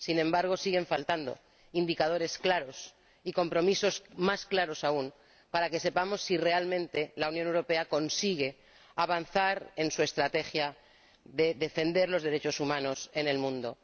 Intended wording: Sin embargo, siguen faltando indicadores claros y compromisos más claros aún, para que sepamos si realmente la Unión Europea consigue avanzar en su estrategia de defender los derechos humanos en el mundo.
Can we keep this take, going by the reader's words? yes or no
yes